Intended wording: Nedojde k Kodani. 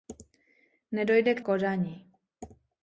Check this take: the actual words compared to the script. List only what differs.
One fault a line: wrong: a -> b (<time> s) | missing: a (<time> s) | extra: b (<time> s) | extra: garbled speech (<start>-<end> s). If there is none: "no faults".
no faults